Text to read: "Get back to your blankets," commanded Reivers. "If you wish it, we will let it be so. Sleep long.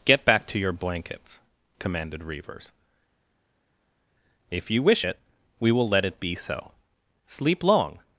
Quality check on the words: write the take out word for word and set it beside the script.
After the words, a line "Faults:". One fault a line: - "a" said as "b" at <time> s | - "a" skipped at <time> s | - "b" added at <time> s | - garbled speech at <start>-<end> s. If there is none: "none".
"Get back to your blankets," commanded Reivers. "If you wish it, we will let it be so. Sleep long.
Faults:
none